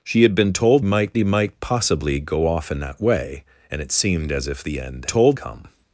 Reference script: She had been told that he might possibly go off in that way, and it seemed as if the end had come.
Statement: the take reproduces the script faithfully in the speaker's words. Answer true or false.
false